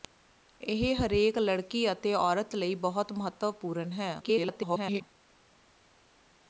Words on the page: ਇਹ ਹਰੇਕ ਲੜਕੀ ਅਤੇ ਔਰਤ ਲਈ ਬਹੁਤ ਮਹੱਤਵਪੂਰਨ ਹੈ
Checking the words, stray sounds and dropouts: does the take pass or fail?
fail